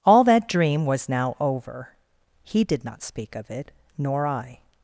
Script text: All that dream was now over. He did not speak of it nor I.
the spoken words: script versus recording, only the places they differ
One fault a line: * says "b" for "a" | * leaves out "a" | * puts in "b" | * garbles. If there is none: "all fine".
all fine